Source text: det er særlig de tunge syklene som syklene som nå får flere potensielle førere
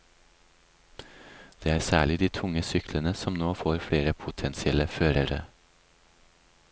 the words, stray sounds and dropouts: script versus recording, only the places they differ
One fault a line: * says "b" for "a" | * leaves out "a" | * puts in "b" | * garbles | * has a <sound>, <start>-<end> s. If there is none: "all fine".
* leaves out "syklene som"